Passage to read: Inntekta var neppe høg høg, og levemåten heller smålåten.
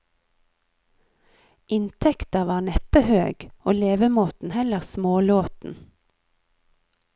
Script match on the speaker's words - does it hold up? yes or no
no